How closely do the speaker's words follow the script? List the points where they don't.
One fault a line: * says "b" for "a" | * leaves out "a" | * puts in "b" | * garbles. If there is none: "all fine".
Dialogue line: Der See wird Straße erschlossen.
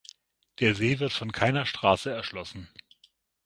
* puts in "von keiner"